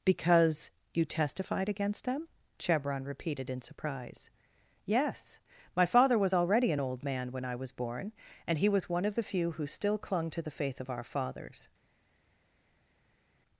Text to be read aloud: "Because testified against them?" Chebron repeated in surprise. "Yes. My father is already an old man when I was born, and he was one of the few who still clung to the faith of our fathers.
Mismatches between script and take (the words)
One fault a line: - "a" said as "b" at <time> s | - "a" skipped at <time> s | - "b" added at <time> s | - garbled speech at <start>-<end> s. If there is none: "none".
- "you" added at 0.9 s
- "is" said as "was" at 6.2 s